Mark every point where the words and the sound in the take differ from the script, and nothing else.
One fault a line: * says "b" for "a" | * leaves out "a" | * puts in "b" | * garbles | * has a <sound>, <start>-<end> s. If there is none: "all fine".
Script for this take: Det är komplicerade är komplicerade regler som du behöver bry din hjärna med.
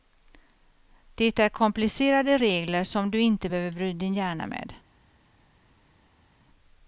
* leaves out "är komplicerade"
* puts in "inte"